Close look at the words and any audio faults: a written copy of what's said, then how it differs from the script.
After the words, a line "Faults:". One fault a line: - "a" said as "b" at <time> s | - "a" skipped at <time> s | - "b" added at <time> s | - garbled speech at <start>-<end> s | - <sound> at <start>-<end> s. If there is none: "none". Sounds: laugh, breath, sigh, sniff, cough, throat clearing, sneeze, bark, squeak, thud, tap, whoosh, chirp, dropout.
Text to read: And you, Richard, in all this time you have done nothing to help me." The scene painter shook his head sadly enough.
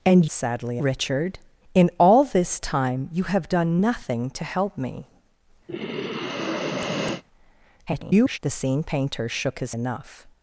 And sadly, Richard, in all this time you have done nothing to help me." [garbled] The scene painter shook his enough.
Faults:
- "you" said as "sadly" at 0.3 s
- sigh at 5.7-7.2 s
- garbled speech at 7.9-8.4 s
- "head sadly" skipped at 9.8 s